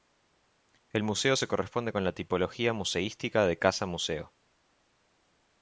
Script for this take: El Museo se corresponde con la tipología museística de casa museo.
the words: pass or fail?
pass